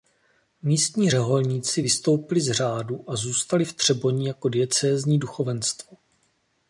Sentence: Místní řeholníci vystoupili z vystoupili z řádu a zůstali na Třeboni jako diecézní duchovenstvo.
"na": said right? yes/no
no